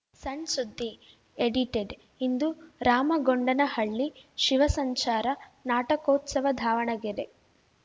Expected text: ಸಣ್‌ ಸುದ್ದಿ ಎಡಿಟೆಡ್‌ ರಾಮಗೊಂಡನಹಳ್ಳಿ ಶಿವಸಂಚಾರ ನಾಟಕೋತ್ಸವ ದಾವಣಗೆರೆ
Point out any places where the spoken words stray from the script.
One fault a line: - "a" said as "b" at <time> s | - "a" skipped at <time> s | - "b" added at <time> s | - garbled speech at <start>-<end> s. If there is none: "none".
- "ಇಂದು" added at 2.2 s